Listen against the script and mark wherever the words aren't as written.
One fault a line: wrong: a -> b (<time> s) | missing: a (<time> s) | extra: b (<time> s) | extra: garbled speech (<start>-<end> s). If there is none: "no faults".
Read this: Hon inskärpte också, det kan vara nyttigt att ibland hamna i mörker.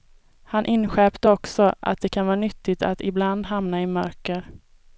wrong: Hon -> Han (0.4 s)
extra: att (1.8 s)